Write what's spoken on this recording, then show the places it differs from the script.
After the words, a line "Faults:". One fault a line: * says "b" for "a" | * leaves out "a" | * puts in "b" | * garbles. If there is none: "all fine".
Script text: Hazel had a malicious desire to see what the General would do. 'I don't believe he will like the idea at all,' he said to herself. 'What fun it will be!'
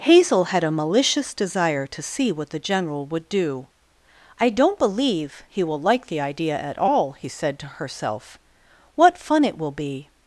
Hazel had a malicious desire to see what the General would do. 'I don't believe he will like the idea at all,' he said to herself. 'What fun it will be!'
Faults:
all fine